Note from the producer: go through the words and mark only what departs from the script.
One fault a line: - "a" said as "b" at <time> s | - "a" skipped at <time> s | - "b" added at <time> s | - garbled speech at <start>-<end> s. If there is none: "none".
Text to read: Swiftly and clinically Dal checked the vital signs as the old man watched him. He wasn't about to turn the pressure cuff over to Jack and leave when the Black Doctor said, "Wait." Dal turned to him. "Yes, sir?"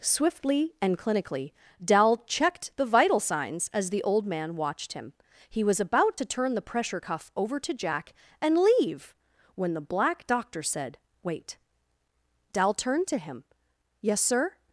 - "wasn't" said as "was" at 5.6 s